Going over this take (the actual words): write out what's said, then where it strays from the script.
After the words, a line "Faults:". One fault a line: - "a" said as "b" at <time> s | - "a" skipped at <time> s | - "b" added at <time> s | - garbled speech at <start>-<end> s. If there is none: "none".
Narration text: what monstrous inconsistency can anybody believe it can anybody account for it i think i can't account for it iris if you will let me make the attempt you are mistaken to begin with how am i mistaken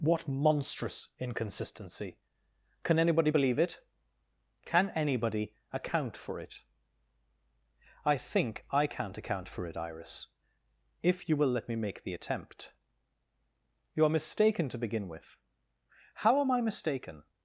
what monstrous inconsistency can anybody believe it can anybody account for it i think i can't account for it iris if you will let me make the attempt you are mistaken to begin with how am i mistaken
Faults:
none